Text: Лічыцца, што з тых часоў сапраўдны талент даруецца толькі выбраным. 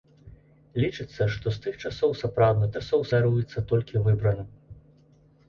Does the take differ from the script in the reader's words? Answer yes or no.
yes